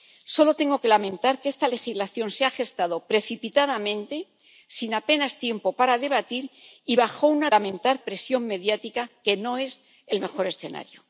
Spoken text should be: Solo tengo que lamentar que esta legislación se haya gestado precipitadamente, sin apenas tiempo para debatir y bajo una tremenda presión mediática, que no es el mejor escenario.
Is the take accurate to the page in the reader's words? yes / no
no